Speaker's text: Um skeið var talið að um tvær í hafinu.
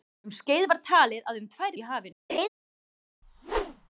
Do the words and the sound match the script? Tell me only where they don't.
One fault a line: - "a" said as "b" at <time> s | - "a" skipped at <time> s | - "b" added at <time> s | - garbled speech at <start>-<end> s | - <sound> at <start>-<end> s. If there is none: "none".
- laugh at 2.3-2.5 s
- whoosh at 3.2-3.9 s